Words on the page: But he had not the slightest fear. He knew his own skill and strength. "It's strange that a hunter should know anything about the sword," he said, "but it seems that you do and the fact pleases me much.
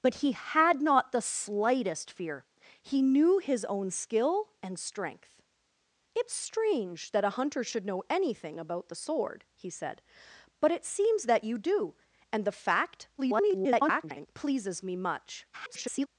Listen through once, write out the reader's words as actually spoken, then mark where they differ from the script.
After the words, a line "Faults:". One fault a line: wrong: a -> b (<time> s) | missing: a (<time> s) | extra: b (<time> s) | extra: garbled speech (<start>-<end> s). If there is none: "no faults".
But he had not the slightest fear. He knew his own skill and strength. "It's strange that a hunter should know anything about the sword," he said, "but it seems that you do and the fact [garbled] pleases me much. [garbled]
Faults:
extra: garbled speech (13.2-14.3 s)
extra: garbled speech (15.5-16.1 s)